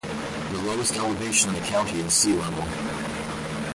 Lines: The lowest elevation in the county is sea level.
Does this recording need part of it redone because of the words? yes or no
no